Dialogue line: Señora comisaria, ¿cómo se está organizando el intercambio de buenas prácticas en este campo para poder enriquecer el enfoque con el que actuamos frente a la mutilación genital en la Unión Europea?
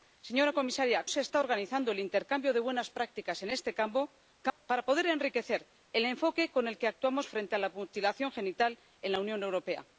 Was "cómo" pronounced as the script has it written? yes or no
no